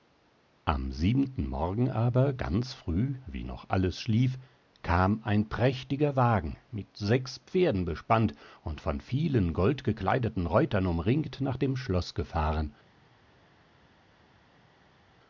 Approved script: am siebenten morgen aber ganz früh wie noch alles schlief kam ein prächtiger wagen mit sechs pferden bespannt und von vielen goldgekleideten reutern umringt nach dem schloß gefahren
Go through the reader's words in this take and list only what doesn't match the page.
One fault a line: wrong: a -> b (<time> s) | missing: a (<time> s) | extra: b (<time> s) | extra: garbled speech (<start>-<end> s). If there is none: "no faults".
no faults